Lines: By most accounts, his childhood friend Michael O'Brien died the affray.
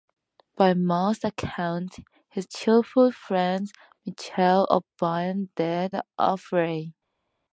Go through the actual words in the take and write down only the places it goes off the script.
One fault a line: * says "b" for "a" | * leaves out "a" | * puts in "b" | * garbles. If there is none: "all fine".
all fine